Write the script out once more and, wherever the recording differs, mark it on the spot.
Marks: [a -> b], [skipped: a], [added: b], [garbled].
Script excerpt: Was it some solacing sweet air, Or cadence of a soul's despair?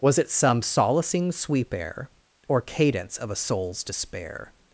Was it some solacing [sweet -> sweep] air, Or cadence of a soul's despair?